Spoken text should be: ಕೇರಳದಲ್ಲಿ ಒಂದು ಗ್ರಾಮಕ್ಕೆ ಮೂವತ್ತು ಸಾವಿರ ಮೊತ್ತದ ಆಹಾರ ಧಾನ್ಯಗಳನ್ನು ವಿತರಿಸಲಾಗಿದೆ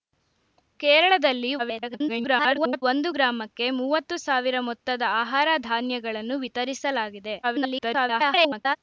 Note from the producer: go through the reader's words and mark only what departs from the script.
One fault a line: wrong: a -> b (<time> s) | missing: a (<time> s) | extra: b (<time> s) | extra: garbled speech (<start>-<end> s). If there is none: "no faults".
extra: garbled speech (1.6-2.8 s)
extra: garbled speech (7.4-8.8 s)